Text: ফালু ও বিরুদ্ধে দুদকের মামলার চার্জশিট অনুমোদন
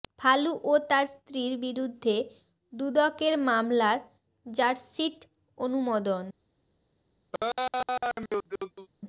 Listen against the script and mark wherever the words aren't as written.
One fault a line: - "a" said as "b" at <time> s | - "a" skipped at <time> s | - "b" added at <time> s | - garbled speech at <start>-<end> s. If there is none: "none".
- "তার স্ত্রীর" added at 0.9 s